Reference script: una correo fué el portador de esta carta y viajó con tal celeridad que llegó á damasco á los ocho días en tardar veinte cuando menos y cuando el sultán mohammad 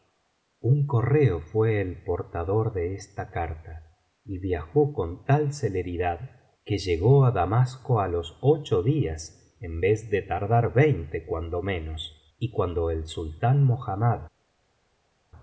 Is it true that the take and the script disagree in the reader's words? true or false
true